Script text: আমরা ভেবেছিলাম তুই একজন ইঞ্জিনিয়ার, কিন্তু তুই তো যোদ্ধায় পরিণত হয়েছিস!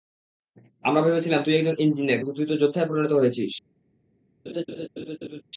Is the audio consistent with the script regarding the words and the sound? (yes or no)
no